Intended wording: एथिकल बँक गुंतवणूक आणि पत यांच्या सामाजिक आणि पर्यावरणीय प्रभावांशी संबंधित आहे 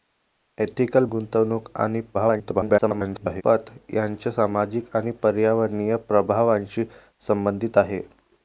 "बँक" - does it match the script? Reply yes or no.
no